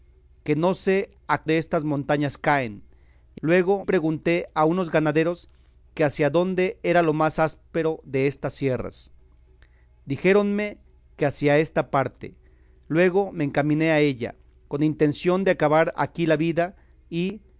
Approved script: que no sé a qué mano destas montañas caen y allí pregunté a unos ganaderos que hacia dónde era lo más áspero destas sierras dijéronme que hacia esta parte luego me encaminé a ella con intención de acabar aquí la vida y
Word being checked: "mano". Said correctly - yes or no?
no